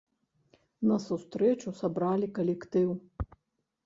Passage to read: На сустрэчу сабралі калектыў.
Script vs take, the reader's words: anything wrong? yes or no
no